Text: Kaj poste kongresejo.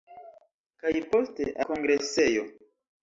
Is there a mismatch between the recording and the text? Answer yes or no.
no